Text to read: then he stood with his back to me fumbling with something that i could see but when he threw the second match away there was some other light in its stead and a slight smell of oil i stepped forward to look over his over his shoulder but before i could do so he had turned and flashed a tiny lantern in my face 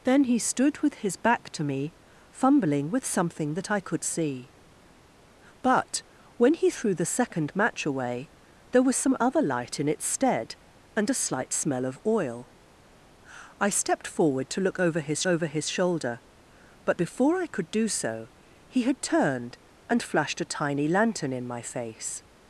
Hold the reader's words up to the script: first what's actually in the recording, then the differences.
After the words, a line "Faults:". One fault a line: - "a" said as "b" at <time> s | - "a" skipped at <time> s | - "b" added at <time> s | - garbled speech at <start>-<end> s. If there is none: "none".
then he stood with his back to me fumbling with something that i could see but when he threw the second match away there was some other light in its stead and a slight smell of oil i stepped forward to look over his over his shoulder but before i could do so he had turned and flashed a tiny lantern in my face
Faults:
none